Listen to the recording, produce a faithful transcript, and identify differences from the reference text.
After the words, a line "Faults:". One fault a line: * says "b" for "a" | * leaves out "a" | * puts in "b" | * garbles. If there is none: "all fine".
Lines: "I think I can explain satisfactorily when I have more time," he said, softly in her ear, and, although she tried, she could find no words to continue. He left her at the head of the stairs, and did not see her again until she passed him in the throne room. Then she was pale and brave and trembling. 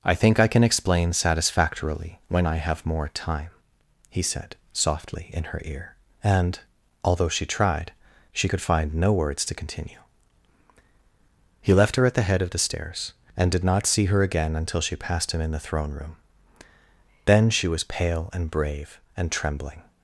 "I think I can explain satisfactorily when I have more time," he said, softly in her ear, and, although she tried, she could find no words to continue. He left her at the head of the stairs, and did not see her again until she passed him in the throne room. Then she was pale and brave and trembling.
Faults:
all fine